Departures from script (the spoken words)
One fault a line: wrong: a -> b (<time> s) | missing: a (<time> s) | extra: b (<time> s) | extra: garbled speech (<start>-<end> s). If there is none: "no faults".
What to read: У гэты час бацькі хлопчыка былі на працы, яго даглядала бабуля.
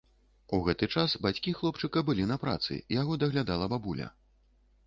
no faults